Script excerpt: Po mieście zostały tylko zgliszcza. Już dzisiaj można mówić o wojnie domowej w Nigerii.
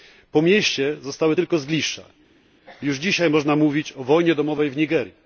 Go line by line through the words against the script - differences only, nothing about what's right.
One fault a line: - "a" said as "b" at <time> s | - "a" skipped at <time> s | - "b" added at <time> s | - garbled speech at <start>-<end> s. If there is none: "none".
none